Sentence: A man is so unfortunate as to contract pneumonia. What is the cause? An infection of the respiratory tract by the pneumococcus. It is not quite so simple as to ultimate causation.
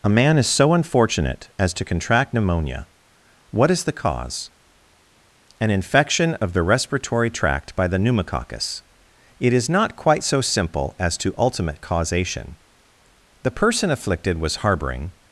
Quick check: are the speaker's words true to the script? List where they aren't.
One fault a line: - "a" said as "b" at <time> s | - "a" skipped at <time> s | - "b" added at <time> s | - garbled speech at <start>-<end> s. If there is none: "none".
- "The person afflicted was harboring" added at 13.4 s